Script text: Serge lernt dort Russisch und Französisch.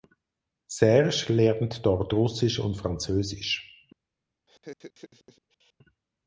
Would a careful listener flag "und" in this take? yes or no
no